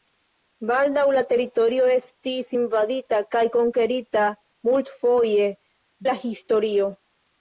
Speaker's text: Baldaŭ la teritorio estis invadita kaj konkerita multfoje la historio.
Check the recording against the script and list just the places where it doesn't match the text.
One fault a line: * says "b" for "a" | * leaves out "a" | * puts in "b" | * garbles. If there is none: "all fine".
all fine